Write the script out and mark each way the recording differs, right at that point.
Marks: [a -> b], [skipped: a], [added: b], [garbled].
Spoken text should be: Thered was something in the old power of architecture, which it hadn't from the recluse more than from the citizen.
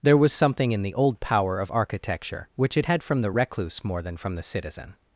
[Thered -> There] was something in the old power of architecture, which it [hadn't -> had] from the recluse more than from the citizen.